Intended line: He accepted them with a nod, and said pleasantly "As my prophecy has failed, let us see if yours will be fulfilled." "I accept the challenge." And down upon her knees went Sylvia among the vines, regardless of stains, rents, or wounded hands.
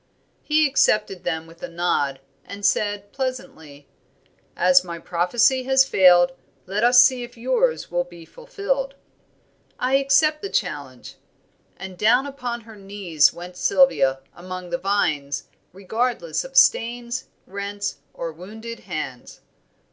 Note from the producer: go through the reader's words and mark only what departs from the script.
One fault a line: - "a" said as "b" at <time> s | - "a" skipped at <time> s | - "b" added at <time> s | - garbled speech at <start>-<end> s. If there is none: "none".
none